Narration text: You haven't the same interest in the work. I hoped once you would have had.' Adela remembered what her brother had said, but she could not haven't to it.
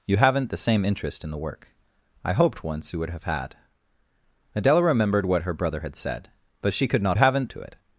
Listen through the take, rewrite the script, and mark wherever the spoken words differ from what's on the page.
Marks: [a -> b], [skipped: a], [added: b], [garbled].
You haven't the same interest in the work. I hoped once you would have had.' Adela remembered what her brother had said, but she could not haven't to it.